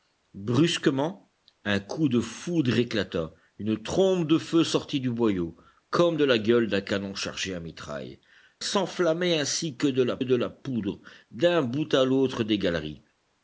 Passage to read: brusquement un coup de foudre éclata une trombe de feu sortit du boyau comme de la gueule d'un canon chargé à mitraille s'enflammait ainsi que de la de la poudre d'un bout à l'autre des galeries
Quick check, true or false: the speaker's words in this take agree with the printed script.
true